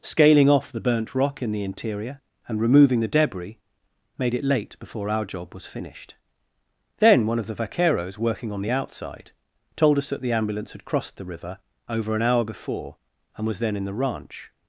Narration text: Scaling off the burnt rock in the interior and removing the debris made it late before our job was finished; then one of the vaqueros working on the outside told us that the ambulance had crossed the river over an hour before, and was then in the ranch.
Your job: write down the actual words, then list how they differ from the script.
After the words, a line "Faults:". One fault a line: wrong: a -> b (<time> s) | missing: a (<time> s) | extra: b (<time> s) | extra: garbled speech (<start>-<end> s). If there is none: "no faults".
Scaling off the burnt rock in the interior and removing the debris made it late before our job was finished; then one of the vaqueros working on the outside told us that the ambulance had crossed the river over an hour before, and was then in the ranch.
Faults:
no faults